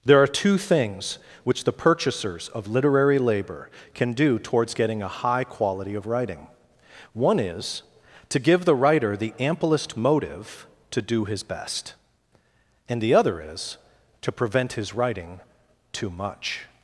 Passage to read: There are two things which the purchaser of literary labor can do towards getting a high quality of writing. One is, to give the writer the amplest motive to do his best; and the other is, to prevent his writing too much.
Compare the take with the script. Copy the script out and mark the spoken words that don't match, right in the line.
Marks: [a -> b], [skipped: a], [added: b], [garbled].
There are two things which the [purchaser -> purchasers] of literary labor can do towards getting a high quality of writing. One is, to give the writer the amplest motive to do his best; and the other is, to prevent his writing too much.